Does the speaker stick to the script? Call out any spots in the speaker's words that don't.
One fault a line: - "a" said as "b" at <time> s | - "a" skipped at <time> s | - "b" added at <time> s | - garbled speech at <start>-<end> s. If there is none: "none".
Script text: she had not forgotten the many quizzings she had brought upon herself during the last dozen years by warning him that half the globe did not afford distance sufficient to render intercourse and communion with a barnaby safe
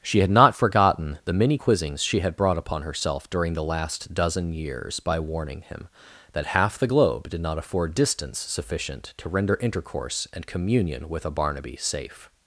none